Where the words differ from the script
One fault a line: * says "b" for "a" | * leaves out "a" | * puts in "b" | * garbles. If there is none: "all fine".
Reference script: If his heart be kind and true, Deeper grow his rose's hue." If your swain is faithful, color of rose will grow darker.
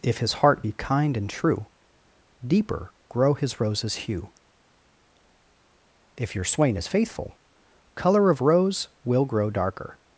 all fine